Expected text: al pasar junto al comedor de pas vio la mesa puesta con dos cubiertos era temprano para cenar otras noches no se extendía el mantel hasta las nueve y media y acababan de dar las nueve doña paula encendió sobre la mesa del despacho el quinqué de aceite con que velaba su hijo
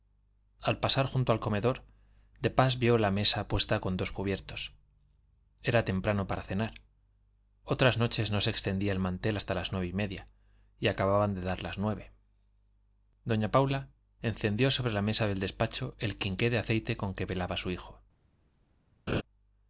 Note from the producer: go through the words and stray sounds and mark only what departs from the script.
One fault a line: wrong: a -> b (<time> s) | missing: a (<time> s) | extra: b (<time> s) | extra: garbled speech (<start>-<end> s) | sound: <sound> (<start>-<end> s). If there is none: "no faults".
sound: laugh (19.1-19.2 s)